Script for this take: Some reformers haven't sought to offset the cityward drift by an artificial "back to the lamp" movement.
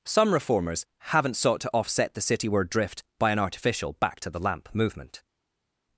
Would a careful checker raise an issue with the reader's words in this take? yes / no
no